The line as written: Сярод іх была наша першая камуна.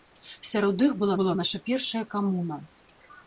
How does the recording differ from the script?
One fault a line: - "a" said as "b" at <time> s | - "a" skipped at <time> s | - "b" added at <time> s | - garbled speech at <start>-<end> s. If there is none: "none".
- "была" added at 1.2 s